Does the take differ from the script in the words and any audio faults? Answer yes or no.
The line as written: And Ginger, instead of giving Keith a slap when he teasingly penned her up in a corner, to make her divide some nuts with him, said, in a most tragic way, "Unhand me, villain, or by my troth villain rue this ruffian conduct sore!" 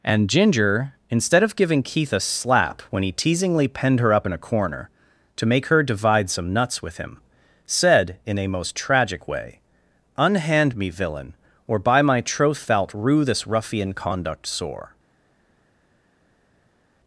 yes